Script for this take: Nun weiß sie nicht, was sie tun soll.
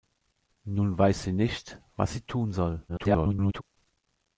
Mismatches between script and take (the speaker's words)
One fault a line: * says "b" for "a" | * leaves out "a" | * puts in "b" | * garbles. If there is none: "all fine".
* garbles